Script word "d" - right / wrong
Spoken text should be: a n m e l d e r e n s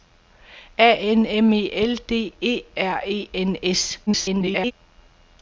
right